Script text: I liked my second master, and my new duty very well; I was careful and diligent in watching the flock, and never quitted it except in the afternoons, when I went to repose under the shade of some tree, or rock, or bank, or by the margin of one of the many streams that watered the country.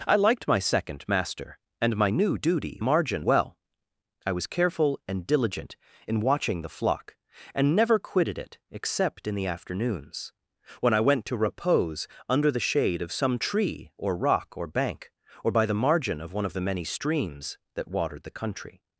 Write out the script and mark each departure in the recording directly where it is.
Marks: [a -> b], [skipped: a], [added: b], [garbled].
I liked my second master, and my new duty [very -> margin] well; I was careful and diligent in watching the flock, and never quitted it except in the afternoons, when I went to repose under the shade of some tree, or rock, or bank, or by the margin of one of the many streams that watered the country.